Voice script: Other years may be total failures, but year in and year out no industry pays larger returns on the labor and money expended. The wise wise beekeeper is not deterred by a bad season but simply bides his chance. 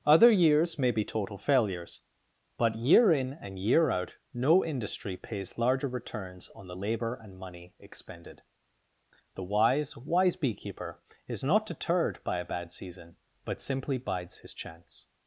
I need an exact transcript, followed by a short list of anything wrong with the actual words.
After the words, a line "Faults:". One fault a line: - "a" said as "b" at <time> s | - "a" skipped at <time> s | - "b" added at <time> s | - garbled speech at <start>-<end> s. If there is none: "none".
Other years may be total failures, but year in and year out no industry pays larger returns on the labor and money expended. The wise wise beekeeper is not deterred by a bad season but simply bides his chance.
Faults:
none